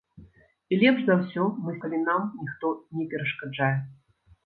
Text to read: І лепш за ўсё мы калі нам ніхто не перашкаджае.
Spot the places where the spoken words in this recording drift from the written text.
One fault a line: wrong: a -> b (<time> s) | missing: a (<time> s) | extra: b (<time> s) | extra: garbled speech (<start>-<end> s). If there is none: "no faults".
no faults